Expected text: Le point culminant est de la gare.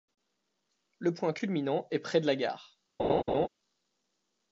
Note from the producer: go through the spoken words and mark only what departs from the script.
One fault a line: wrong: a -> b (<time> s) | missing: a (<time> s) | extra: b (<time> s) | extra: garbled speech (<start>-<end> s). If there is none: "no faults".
extra: près (2.0 s)